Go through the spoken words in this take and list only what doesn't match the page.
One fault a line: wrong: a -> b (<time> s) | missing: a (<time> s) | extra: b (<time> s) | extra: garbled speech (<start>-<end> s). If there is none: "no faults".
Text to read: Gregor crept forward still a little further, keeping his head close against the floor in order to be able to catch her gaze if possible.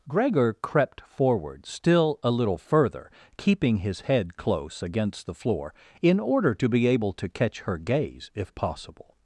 no faults